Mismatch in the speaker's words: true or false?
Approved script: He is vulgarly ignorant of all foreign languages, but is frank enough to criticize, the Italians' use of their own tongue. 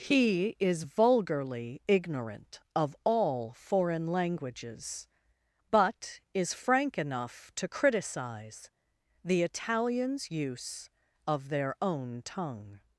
false